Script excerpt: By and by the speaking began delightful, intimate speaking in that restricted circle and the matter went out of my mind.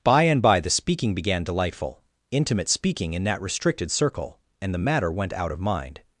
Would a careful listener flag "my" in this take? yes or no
yes